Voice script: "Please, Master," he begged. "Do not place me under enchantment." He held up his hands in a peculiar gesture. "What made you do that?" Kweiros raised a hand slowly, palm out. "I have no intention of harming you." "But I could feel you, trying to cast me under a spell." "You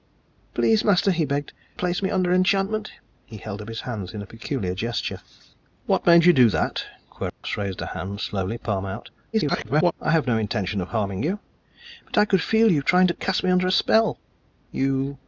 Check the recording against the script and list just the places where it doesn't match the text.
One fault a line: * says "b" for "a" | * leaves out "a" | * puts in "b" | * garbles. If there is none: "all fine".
* leaves out "Do not"
* garbles